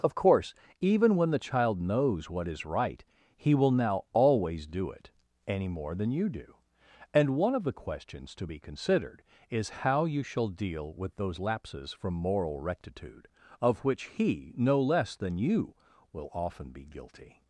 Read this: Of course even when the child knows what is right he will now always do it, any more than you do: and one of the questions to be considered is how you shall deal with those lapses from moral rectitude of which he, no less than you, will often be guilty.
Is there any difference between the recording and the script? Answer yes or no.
no